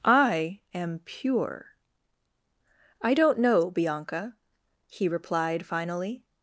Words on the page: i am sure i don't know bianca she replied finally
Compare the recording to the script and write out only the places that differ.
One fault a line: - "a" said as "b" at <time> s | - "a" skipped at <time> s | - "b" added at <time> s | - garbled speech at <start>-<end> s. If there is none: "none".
- "sure" said as "pure" at 1.0 s
- "she" said as "he" at 4.9 s